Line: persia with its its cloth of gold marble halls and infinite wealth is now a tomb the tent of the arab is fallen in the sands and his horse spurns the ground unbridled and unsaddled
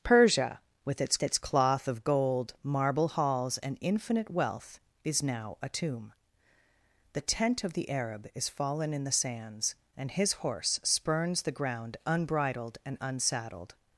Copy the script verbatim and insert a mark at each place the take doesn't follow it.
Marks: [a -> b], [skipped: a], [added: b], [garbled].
persia with its its cloth of gold marble halls and infinite wealth is now a tomb the tent of the arab is fallen in the sands and his horse spurns the ground unbridled and unsaddled